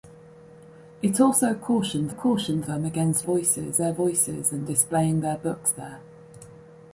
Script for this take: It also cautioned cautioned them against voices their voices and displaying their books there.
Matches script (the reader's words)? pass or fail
pass